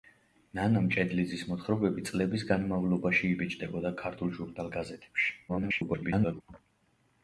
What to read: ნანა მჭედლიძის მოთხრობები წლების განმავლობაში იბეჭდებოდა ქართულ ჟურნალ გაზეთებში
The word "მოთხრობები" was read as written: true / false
true